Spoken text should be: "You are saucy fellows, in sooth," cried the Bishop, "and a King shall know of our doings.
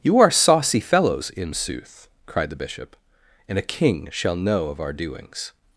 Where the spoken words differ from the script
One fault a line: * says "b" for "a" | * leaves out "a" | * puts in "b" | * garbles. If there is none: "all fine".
all fine